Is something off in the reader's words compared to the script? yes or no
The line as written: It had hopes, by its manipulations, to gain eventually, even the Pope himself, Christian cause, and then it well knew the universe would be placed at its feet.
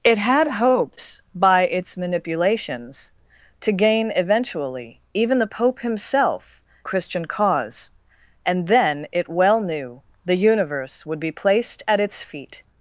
no